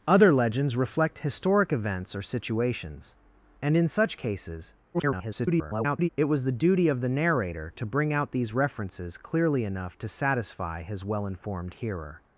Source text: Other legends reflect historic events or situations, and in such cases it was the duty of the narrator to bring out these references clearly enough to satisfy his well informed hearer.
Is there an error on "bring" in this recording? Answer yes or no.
no